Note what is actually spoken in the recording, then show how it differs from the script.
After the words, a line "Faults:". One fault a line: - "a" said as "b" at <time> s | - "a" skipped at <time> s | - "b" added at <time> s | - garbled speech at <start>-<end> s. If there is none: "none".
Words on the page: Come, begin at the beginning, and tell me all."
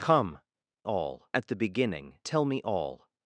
Come, all at the beginning, tell me all."
Faults:
- "begin" said as "all" at 0.8 s
- "and" skipped at 2.2 s